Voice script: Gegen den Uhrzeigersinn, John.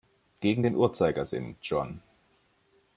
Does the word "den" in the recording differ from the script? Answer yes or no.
no